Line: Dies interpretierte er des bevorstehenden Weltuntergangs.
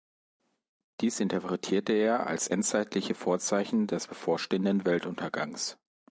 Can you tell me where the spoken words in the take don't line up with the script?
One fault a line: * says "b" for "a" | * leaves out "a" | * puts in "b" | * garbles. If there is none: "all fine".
* puts in "als endzeitliche Vorzeichen"